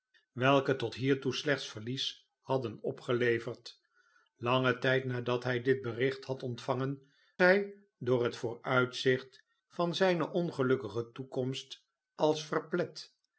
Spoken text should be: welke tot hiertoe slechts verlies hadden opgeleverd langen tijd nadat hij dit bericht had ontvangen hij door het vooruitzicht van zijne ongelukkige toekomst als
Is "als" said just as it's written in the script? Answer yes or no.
yes